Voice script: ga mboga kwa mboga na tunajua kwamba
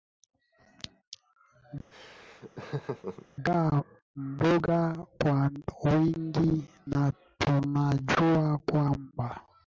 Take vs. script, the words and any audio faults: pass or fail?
fail